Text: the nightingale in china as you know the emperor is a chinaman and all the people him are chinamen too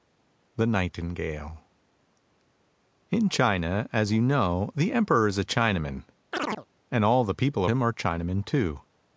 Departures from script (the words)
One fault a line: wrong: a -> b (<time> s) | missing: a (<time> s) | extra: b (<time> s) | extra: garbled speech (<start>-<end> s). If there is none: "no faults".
no faults